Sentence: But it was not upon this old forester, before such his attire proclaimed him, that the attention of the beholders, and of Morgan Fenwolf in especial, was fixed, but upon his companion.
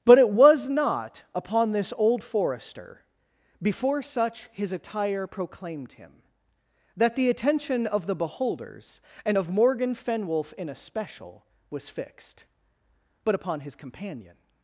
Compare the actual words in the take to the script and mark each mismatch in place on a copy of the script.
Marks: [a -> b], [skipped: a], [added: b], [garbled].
But it was not upon this old forester, before such his attire proclaimed him, that the attention of the beholders, and of Morgan Fenwolf in especial, was fixed, but upon his companion.